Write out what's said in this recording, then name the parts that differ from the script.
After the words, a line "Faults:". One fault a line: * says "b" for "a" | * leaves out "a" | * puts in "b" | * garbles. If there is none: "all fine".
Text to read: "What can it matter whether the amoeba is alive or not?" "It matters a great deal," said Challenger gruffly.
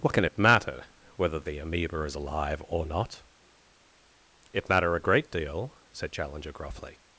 "What can it matter whether the amoeba is alive or not?" "It matter a great deal," said Challenger gruffly.
Faults:
* says "matter" for "matters"